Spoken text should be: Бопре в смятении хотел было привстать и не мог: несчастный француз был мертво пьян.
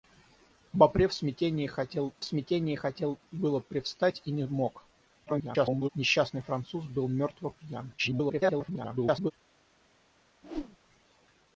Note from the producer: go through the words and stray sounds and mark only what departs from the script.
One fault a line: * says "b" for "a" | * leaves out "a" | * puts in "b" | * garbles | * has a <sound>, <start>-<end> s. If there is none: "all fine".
* puts in "смятении хотел"
* garbles
* garbles
* has a whoosh, 10.4-10.8 s